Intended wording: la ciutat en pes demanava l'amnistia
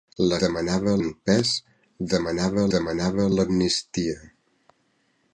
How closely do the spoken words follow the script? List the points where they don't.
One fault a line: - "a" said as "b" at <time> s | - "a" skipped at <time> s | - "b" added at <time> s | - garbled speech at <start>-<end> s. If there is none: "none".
- "ciutat" said as "demanava" at 0.4 s
- "demanava" added at 2.8 s